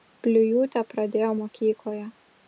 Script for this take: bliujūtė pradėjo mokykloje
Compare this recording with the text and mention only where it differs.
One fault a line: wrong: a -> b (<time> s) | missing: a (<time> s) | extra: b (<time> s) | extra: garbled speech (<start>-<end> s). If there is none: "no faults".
no faults